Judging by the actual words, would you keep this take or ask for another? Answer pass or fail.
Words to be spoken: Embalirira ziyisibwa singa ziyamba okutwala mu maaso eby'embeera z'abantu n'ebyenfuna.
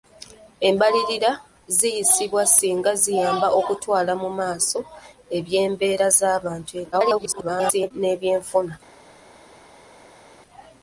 fail